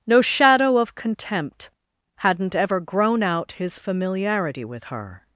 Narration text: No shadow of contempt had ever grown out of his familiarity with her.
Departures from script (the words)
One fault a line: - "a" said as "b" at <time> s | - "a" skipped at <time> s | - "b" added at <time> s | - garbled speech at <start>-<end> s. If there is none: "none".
- "had" said as "hadn't" at 2.2 s
- "of" skipped at 3.5 s